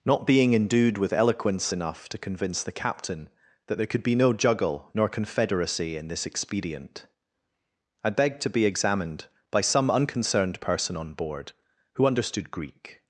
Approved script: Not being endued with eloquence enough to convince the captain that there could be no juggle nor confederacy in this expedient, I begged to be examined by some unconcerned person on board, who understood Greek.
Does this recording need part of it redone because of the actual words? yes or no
no